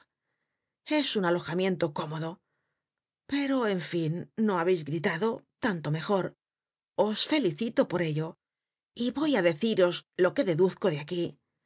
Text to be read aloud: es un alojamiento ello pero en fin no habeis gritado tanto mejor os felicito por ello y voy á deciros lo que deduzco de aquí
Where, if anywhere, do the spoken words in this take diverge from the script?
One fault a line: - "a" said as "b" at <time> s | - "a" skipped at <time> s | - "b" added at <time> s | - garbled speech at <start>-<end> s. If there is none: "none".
- "ello" said as "cómodo" at 1.9 s